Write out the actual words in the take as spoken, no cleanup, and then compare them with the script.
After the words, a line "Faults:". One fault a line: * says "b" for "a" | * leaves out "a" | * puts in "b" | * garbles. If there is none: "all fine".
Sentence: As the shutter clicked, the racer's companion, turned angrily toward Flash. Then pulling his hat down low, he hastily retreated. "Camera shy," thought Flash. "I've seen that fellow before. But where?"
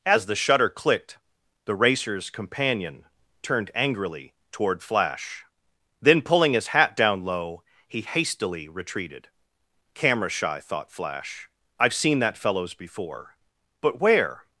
As the shutter clicked, the racer's companion, turned angrily toward Flash. Then pulling his hat down low, he hastily retreated. "Camera shy," thought Flash. "I've seen that fellows before. But where?"
Faults:
* says "fellows" for "fellow"